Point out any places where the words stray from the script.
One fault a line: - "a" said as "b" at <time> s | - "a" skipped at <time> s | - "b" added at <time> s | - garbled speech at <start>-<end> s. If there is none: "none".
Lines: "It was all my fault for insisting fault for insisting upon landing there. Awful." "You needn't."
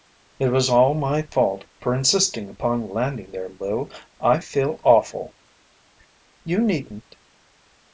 - "fault for insisting upon landing there" said as "upon landing there Lou I feel" at 2.5 s